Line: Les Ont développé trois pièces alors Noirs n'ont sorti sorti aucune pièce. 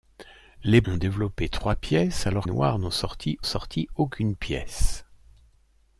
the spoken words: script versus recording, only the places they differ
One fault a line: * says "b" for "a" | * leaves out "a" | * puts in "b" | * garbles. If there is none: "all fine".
all fine